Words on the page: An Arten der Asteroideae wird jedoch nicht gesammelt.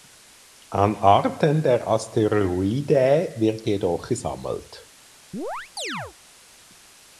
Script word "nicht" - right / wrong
wrong